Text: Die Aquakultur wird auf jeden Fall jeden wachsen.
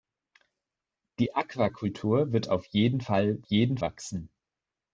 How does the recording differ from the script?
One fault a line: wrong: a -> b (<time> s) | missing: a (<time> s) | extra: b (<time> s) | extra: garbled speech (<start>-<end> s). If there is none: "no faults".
no faults